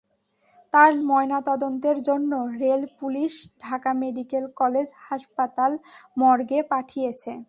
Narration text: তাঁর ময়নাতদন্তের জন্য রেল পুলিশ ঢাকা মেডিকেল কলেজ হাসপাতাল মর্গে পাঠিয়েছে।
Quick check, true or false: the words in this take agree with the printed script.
true